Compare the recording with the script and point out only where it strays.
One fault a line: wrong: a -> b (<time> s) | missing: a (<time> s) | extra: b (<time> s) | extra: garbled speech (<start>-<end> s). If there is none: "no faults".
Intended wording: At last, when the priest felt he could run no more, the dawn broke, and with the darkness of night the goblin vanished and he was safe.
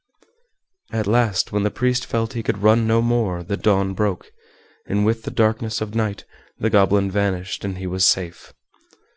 no faults